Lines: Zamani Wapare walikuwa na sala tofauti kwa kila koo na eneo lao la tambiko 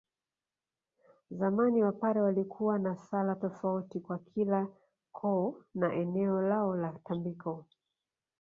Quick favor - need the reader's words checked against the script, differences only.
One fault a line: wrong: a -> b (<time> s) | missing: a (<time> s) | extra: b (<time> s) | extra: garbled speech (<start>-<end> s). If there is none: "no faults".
no faults